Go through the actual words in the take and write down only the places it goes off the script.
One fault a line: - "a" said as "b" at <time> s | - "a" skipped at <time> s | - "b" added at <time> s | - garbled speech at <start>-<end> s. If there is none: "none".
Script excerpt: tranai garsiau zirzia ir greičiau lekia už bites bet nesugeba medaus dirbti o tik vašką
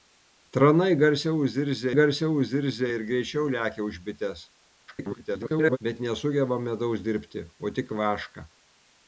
- "garsiau zirzia" added at 2.0 s
- garbled speech at 4.9-5.8 s